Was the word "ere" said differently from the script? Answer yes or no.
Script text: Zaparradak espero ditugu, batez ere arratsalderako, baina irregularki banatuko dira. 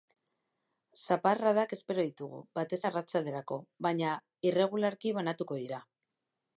yes